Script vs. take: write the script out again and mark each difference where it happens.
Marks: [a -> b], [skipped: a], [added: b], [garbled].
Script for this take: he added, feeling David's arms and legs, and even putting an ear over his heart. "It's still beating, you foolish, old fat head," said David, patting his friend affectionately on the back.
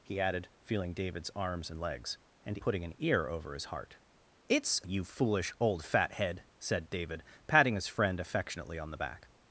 he added, feeling David's arms and legs, and [skipped: even] putting an ear over his heart. "It's [skipped: still beating,] you foolish, old fat head," said David, patting his friend affectionately on the back.